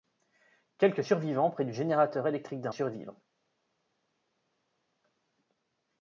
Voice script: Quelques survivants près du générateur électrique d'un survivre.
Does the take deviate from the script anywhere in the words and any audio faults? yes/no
no